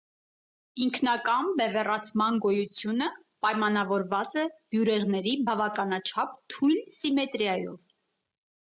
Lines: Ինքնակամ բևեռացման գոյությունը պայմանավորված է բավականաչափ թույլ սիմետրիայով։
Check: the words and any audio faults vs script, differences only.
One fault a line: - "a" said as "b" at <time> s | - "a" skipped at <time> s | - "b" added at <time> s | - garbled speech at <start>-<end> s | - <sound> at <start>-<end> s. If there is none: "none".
- "բյուրեղների" added at 4.6 s